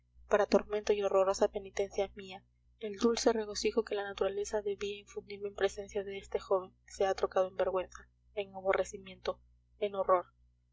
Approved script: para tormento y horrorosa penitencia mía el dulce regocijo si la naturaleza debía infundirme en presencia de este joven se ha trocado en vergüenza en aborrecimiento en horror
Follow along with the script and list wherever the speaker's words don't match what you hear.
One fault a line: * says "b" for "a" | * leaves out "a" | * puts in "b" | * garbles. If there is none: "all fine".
* says "que" for "si"